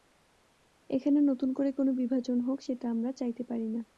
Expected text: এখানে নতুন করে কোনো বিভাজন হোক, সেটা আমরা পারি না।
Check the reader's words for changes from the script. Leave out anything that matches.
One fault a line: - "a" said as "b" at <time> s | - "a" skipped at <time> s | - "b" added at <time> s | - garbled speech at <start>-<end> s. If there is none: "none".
- "চাইতে" added at 3.1 s